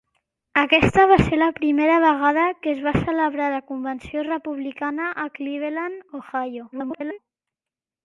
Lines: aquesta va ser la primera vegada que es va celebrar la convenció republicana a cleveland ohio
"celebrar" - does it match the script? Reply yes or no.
yes